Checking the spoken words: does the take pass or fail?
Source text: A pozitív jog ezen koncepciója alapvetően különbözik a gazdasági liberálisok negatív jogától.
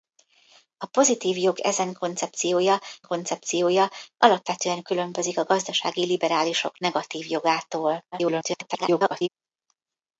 fail